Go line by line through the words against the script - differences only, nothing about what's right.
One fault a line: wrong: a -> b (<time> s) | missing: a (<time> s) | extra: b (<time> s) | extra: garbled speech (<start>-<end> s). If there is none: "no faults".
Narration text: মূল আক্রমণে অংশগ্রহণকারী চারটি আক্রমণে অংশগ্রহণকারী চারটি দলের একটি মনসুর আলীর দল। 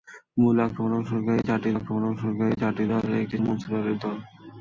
no faults